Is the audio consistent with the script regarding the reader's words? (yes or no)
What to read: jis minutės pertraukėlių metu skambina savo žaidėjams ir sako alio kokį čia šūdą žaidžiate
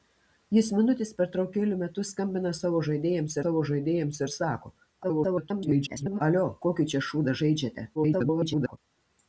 no